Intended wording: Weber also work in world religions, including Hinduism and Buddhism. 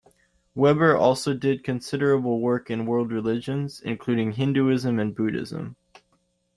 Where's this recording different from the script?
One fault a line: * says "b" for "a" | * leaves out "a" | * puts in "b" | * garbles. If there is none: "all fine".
* puts in "did considerable"